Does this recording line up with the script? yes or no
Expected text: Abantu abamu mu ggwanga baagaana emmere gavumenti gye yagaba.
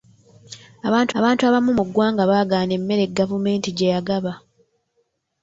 no